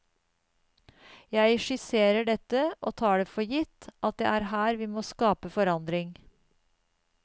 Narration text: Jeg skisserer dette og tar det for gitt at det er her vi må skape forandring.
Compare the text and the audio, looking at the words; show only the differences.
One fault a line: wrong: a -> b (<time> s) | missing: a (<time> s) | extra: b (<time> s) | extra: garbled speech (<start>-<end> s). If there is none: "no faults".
no faults